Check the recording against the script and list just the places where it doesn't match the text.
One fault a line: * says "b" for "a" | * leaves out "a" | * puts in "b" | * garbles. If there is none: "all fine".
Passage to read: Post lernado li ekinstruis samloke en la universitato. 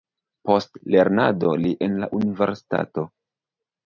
* leaves out "ekinstruis samloke"